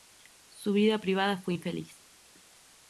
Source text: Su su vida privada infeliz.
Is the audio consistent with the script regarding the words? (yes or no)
no